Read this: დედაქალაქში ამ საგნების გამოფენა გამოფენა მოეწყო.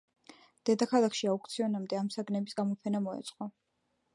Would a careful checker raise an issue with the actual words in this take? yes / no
yes